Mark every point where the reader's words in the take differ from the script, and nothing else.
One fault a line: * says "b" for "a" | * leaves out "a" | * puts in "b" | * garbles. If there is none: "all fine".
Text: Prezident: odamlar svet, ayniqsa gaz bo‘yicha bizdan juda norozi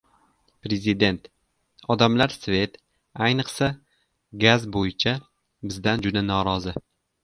all fine